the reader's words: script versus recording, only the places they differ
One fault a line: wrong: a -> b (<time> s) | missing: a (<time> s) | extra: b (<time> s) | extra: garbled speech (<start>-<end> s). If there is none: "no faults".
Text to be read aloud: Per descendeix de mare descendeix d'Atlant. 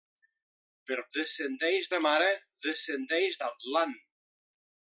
no faults